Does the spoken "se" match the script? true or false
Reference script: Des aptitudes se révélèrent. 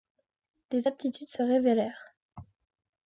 true